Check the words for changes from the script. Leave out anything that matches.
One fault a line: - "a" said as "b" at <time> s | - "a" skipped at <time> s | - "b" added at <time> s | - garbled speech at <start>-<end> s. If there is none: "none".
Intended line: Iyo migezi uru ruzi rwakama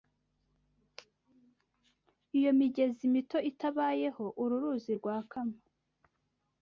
- "mito itabayeho" added at 3.1 s